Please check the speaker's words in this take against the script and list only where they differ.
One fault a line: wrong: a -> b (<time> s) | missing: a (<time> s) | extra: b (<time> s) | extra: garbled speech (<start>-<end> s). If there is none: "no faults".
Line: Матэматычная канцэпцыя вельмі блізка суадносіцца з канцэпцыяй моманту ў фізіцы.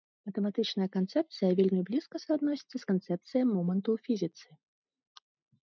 no faults